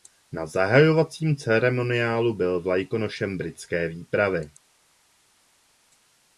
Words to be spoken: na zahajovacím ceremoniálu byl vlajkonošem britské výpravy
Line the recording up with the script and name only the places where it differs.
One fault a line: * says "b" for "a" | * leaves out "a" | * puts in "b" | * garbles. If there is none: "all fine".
all fine